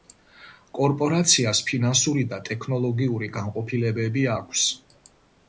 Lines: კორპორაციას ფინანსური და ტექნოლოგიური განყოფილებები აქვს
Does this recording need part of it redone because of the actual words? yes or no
no